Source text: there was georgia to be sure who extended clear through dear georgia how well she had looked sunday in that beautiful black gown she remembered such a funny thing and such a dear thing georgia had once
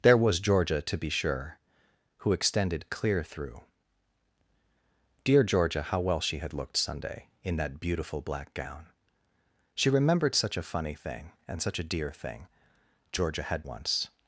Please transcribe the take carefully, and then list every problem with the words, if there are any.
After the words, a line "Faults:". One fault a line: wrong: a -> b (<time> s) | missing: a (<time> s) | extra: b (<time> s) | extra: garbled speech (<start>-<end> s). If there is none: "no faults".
there was georgia to be sure who extended clear through dear georgia how well she had looked sunday in that beautiful black gown she remembered such a funny thing and such a dear thing georgia had once
Faults:
no faults